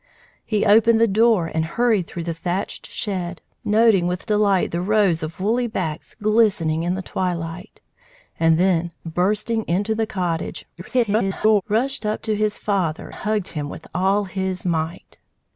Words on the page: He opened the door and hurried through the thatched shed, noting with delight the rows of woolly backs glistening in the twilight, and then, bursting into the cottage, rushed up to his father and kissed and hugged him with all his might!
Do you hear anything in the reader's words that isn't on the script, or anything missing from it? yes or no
yes